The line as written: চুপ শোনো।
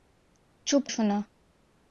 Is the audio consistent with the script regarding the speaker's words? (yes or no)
yes